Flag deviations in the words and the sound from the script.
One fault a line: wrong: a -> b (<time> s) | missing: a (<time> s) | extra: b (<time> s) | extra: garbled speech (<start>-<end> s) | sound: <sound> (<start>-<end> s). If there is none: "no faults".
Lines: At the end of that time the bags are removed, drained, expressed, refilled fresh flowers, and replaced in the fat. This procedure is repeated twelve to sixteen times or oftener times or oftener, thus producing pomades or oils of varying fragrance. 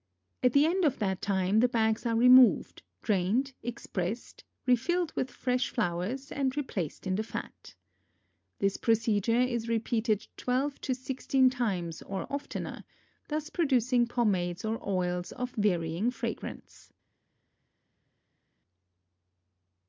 extra: with (5.1 s)
missing: times or oftener (12.8 s)